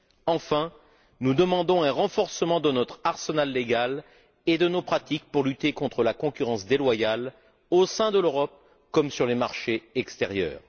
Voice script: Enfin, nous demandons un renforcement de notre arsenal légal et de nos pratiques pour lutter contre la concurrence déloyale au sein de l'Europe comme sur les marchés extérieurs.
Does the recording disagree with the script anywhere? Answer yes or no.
no